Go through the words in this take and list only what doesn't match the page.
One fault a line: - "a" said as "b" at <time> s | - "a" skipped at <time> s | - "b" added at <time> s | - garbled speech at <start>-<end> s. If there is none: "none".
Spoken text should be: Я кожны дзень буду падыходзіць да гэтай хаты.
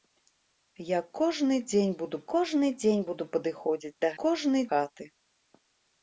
- "кожны дзень буду" added at 2.3 s
- "гэтай" said as "кожны" at 4.2 s